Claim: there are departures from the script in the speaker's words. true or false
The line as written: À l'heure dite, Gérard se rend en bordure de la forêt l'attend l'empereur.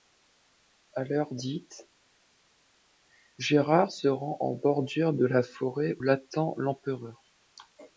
false